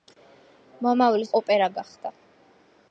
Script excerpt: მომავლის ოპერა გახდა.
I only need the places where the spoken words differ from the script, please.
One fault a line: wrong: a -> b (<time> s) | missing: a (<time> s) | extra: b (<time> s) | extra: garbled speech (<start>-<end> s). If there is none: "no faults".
no faults